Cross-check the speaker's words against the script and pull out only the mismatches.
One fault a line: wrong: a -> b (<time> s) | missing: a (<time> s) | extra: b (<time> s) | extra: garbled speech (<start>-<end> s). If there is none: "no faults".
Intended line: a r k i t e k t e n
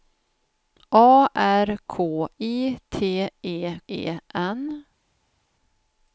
missing: k t (3.8 s)